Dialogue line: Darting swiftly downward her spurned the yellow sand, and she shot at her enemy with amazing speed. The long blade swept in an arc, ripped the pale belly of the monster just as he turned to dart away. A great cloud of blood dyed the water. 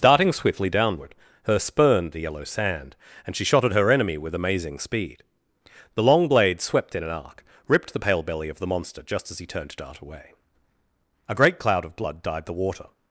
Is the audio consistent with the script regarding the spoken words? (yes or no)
yes